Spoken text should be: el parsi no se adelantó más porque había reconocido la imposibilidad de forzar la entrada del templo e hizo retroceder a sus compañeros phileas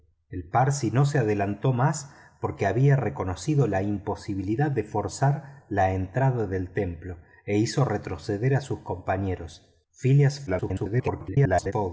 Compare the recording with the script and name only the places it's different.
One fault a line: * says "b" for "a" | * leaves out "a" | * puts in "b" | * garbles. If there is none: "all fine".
* garbles